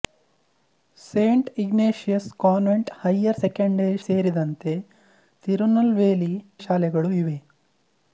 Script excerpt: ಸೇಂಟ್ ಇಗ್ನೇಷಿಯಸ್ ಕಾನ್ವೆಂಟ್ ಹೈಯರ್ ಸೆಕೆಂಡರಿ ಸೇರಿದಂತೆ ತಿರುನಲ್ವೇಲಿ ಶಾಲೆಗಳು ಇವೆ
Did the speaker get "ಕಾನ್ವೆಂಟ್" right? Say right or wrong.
right